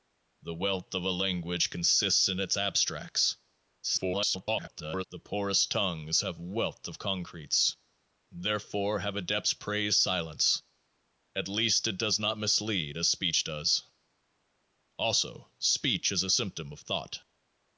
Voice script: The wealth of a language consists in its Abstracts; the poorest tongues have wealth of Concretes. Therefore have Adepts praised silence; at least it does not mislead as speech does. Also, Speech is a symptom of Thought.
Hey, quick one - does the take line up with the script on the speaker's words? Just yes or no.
no